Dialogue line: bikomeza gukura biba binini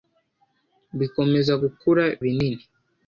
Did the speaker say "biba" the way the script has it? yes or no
no